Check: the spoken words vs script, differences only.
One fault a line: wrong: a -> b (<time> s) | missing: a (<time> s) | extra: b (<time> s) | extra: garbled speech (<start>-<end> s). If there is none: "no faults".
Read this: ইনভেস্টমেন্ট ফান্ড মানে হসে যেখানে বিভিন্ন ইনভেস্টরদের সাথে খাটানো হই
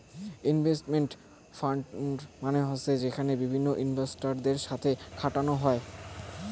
no faults